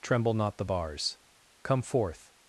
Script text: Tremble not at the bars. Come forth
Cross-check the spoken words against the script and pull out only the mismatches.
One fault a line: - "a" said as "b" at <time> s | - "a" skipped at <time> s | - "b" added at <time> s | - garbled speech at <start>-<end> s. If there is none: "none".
- "at" skipped at 0.6 s